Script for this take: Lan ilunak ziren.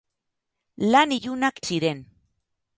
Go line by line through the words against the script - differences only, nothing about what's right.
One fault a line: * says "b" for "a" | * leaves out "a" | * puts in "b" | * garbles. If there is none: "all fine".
all fine